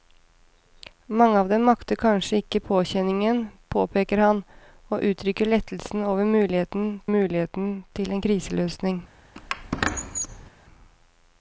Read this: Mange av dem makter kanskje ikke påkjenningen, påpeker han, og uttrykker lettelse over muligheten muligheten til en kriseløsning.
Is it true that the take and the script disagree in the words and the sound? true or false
true